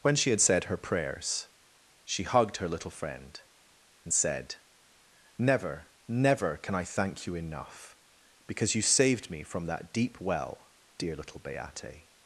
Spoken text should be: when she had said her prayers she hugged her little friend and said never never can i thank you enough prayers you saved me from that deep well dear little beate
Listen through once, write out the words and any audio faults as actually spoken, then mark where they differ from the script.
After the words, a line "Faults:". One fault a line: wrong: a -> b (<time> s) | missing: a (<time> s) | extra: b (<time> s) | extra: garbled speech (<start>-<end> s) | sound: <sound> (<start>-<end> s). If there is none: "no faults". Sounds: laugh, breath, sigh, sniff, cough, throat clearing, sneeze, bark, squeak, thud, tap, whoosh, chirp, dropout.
when she had said her prayers she hugged her little friend and said never never can i thank you enough because you saved me from that deep well dear little beate
Faults:
wrong: prayers -> because (8.5 s)